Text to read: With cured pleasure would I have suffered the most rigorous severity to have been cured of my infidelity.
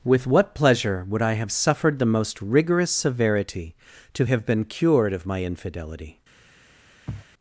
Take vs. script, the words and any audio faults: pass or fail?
fail